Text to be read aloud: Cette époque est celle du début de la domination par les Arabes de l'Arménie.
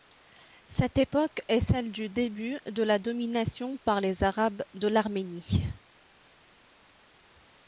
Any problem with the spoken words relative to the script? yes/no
no